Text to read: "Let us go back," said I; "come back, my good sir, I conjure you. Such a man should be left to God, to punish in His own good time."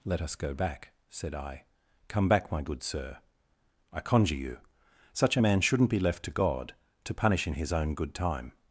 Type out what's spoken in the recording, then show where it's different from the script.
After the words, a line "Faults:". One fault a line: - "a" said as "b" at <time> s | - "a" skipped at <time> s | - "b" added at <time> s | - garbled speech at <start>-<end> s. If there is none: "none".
"Let us go back," said I; "come back, my good sir, I conjure you. Such a man shouldn't be left to God, to punish in His own good time."
Faults:
- "should" said as "shouldn't" at 5.6 s